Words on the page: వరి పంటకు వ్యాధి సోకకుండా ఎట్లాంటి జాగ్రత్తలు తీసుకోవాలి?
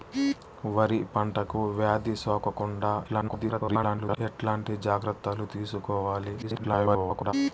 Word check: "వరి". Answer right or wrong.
right